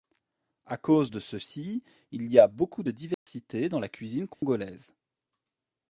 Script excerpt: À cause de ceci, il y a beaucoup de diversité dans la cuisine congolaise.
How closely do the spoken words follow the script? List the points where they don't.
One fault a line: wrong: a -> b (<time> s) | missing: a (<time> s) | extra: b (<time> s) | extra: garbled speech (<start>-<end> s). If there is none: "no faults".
no faults